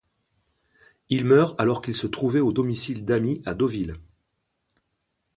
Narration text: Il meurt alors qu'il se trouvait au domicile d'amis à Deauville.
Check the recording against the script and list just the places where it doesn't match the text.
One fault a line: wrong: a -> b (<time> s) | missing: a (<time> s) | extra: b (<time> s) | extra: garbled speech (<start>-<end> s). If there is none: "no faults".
no faults